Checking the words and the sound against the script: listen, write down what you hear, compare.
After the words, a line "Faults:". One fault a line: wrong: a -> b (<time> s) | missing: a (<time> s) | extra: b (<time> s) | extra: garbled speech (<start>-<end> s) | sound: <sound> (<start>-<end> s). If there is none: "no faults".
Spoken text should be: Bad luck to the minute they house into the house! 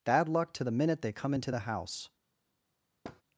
Bad luck to the minute they come into the house!
Faults:
wrong: house -> come (1.1 s)
sound: thud (3.0-3.2 s)